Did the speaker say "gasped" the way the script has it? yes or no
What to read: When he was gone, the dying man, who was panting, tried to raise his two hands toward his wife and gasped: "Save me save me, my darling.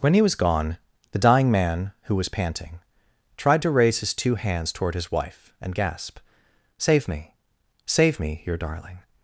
no